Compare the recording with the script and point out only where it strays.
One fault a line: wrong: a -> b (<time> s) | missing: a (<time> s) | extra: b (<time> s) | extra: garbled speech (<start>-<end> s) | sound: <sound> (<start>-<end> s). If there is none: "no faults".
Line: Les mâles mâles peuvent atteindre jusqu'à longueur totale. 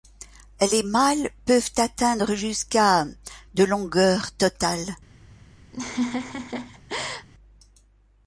missing: mâles (1.3 s)
extra: de (3.5 s)
sound: laugh (5.7-7.3 s)